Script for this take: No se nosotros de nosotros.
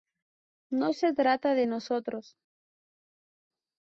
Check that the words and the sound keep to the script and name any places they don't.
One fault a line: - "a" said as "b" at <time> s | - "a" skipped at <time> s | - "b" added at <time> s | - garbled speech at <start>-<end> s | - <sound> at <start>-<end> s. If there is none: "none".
- "nosotros" said as "trata" at 1.1 s